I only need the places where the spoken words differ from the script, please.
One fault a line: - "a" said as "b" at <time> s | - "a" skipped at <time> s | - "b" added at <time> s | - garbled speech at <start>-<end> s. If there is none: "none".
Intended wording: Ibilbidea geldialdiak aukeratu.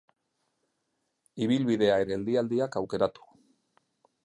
none